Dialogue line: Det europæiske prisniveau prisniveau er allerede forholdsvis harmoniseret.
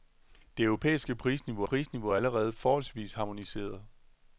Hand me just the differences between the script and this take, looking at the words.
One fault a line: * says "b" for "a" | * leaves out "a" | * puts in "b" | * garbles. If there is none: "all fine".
all fine